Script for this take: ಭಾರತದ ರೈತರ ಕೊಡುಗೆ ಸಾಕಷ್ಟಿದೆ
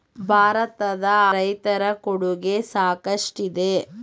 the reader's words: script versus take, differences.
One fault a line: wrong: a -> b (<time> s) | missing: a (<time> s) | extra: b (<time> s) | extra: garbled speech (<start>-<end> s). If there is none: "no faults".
no faults